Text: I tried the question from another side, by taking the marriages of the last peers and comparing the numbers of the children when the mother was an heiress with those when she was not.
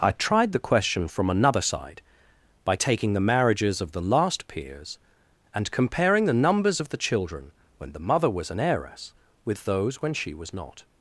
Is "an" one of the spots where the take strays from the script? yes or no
no